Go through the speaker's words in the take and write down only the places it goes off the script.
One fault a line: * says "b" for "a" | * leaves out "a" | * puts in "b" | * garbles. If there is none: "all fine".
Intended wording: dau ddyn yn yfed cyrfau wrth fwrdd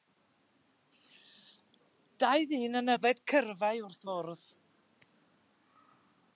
all fine